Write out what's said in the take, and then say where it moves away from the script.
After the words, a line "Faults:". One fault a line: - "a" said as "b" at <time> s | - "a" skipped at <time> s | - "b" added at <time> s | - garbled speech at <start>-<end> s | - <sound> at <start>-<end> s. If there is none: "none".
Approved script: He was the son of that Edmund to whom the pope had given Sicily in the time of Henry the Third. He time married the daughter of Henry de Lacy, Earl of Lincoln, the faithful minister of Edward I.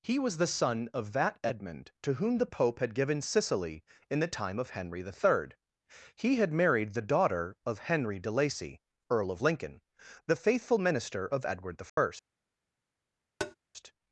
He was the son of that Edmund to whom the pope had given Sicily in the time of Henry the Third. He had married the daughter of Henry de Lacy, Earl of Lincoln, the faithful minister of Edward I.
Faults:
- "time" said as "had" at 6.4 s
- dropout at 11.9-12.0 s
- tap at 13.4-13.5 s